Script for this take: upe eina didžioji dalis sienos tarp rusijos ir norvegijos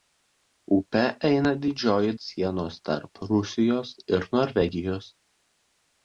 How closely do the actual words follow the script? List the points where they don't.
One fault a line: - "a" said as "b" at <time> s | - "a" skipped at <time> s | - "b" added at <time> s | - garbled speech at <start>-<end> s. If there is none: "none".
- "dalis" skipped at 2.1 s